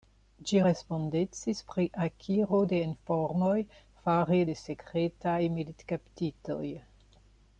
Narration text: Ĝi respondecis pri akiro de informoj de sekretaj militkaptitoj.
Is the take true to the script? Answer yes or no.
no